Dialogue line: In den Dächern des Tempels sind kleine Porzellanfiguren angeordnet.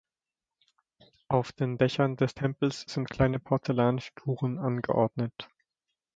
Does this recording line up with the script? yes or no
no